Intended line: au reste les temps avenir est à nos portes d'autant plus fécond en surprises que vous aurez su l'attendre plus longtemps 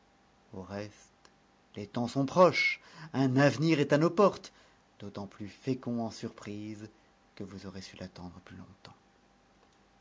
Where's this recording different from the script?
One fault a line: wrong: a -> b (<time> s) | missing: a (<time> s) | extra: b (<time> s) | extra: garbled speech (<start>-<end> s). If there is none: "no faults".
extra: sont proches un (2.1 s)